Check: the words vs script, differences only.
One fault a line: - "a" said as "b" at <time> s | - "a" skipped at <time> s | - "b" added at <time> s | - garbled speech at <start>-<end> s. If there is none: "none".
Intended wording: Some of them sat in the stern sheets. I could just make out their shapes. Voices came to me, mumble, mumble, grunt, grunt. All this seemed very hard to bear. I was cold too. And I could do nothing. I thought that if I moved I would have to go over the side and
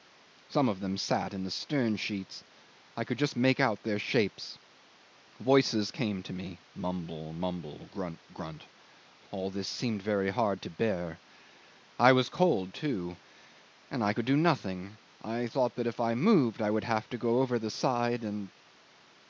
none